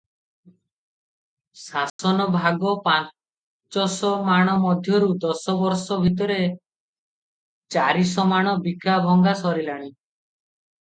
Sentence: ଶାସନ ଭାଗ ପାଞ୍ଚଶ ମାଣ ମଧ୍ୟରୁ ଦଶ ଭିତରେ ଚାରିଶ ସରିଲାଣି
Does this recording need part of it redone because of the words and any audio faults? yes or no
yes